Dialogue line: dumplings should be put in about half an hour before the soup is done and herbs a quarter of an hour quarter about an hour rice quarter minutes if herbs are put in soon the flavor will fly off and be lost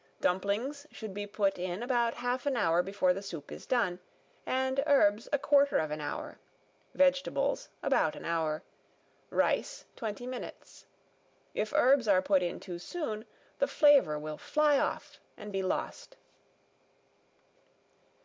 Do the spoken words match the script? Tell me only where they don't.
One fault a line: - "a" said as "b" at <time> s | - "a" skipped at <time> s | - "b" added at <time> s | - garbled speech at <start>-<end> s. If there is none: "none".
- "quarter" said as "vegetables" at 6.9 s
- "quarter" said as "twenty" at 10.0 s
- "too" added at 12.6 s